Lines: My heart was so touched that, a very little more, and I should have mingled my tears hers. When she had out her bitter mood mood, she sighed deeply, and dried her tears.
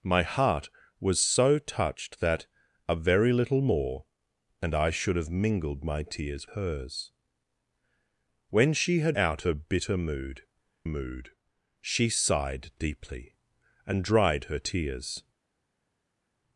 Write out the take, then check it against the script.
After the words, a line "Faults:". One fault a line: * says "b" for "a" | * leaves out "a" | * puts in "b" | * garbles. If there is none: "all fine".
My heart was so touched that, a very little more, and I should have mingled my tears hers. When she had out her bitter mood mood, she sighed deeply, and dried her tears.
Faults:
all fine